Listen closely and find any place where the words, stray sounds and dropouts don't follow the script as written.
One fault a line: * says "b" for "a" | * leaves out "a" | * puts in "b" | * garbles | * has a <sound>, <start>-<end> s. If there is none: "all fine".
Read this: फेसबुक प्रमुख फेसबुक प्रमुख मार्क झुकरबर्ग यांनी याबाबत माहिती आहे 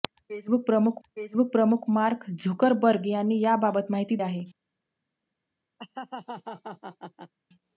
* has a laugh, 5.8-7.3 s